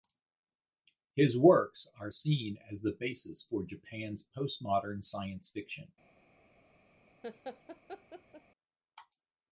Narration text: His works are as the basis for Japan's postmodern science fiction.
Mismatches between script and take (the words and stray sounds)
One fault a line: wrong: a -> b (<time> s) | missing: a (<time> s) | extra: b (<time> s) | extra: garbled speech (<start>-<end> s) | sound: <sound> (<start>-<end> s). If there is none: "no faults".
extra: seen (2.1 s)
sound: laugh (7.2-8.4 s)